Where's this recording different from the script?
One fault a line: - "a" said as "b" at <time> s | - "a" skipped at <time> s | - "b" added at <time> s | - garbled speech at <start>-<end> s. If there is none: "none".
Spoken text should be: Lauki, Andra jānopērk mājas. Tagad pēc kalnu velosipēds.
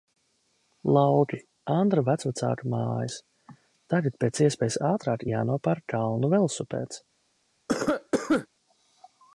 - "jānopērk" said as "vecvecāku" at 2.1 s
- "iespējas ātrāk jānopērk" added at 4.5 s